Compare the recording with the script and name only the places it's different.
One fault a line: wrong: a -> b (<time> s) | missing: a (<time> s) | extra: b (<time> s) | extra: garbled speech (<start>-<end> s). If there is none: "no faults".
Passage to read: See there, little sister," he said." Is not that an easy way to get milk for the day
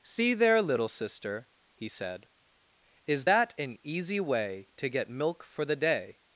missing: not (3.3 s)